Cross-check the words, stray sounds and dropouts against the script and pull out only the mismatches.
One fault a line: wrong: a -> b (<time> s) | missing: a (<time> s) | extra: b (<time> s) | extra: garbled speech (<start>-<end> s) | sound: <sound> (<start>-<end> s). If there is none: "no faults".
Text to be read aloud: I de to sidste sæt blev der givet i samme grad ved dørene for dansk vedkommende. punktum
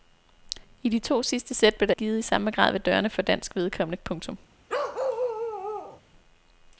sound: bark (4.7-6.0 s)